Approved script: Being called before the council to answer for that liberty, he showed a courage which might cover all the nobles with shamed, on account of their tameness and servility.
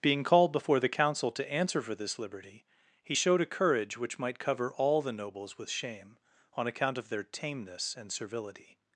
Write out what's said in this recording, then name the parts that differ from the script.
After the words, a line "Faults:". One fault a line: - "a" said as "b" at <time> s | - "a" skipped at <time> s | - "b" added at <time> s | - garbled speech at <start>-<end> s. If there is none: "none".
Being called before the council to answer for this liberty, he showed a courage which might cover all the nobles with shame, on account of their tameness and servility.
Faults:
- "that" said as "this" at 1.9 s
- "shamed" said as "shame" at 5.7 s